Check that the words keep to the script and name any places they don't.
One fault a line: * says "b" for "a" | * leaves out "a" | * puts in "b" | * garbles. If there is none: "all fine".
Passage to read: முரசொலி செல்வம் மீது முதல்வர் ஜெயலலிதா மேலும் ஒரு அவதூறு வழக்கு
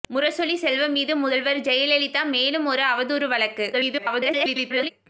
* garbles